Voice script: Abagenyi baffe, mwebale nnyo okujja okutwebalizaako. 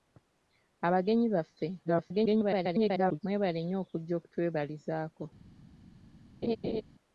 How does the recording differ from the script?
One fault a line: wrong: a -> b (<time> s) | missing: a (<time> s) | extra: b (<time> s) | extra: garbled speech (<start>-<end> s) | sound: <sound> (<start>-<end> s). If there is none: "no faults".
extra: garbled speech (1.8-3.2 s)
sound: laugh (6.4-6.8 s)